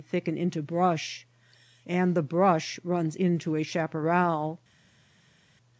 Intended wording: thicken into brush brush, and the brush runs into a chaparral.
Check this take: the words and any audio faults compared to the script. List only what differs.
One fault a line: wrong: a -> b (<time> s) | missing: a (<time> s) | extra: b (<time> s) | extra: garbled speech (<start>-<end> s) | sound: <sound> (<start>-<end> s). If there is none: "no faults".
missing: brush (1.3 s)